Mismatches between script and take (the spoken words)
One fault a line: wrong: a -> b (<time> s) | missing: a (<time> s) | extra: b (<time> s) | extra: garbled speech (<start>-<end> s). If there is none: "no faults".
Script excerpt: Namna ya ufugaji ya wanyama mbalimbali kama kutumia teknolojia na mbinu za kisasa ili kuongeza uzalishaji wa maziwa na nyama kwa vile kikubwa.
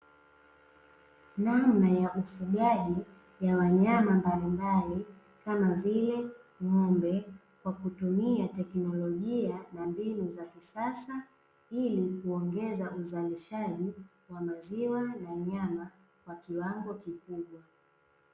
extra: vile ng'ombe kwa (5.7 s)
wrong: vile -> kiwango (16.4 s)